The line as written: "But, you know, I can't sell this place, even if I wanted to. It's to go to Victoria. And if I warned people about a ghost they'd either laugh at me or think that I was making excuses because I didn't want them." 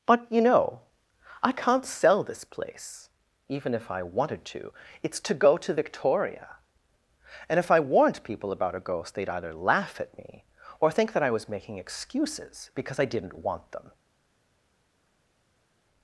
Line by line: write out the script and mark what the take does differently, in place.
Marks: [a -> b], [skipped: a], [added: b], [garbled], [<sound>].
"But, you know, I can't sell this place, even if I wanted to. It's to go to Victoria. And if I warned people about a ghost they'd either laugh at me or think that I was making excuses because I didn't want them."